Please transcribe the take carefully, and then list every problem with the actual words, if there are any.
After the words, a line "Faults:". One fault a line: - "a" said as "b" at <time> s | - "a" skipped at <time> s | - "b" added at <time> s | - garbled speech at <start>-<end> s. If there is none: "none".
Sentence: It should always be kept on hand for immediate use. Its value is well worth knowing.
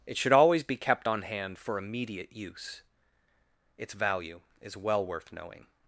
It should always be kept on hand for immediate use. Its value is well worth knowing.
Faults:
none